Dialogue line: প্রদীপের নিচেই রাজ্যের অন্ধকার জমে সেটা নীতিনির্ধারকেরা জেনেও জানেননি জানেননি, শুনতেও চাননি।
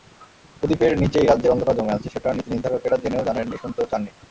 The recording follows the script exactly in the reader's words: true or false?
false